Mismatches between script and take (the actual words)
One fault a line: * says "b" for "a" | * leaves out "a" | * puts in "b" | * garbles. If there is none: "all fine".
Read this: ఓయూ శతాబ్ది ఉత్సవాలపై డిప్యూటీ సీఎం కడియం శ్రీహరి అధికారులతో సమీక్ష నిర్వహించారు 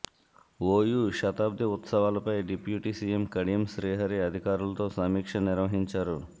all fine